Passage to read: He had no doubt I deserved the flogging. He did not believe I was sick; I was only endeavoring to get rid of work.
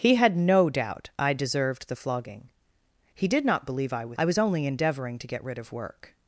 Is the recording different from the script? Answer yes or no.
yes